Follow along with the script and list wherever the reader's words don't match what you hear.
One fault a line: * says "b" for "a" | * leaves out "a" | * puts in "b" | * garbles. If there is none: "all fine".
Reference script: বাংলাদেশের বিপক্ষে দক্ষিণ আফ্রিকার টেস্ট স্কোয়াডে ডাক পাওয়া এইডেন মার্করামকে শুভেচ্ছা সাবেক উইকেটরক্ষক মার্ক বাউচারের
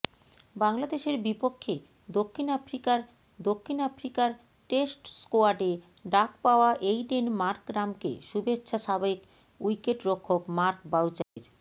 * puts in "দক্ষিণ আফ্রিকার"